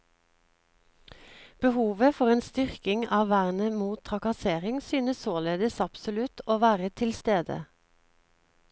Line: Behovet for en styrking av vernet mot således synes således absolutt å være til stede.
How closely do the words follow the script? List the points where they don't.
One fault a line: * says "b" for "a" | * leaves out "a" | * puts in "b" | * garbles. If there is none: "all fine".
* says "trakassering" for "således"